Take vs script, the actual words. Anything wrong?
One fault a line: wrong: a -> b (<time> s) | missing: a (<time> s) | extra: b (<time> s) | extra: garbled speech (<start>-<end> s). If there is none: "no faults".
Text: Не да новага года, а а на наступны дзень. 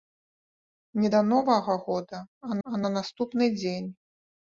no faults